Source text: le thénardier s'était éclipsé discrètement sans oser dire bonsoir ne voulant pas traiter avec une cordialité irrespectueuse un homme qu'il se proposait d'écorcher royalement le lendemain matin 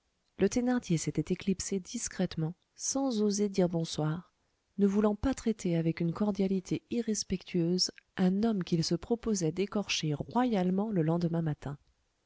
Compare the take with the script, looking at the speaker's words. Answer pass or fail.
pass